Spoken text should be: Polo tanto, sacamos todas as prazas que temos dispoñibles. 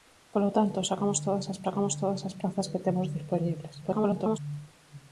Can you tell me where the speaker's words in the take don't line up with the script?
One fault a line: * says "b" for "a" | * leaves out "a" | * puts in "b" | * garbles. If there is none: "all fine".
* puts in "sacamos todas as"
* garbles